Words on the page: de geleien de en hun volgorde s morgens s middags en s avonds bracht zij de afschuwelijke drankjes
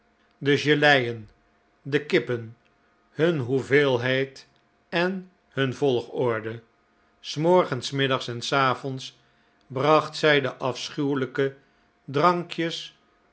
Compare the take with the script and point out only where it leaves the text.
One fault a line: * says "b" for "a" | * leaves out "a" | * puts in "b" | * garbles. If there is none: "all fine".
* puts in "kippen hun hoeveelheid"